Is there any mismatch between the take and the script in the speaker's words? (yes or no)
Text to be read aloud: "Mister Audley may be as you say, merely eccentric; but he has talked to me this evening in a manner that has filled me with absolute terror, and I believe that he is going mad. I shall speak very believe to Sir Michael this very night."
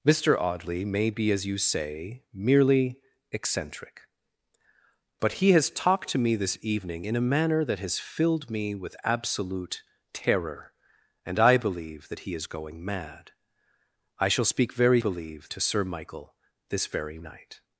no